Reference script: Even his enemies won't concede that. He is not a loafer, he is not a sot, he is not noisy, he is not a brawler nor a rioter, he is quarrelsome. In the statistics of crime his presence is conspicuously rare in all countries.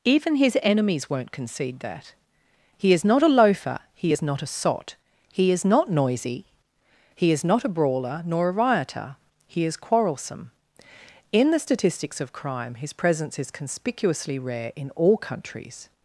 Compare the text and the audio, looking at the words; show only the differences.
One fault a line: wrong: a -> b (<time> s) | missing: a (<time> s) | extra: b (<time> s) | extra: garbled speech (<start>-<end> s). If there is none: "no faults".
no faults